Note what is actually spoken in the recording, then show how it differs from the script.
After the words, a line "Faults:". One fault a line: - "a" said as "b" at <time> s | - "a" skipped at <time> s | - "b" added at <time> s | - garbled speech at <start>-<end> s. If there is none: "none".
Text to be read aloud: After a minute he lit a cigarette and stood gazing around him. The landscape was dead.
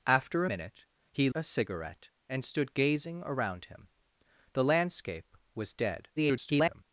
After minute he a cigarette and stood gazing around him. The landscape was dead. [garbled]
Faults:
- "a" skipped at 0.5 s
- "lit" skipped at 1.3 s
- garbled speech at 6.2-6.8 s